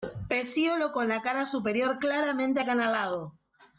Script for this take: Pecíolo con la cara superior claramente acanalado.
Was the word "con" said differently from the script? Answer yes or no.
no